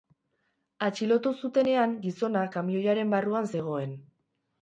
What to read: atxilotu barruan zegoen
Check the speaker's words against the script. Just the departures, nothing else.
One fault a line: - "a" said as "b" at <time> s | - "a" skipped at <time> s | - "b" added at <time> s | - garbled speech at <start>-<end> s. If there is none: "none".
- "zutenean gizona kamioiaren" added at 1.4 s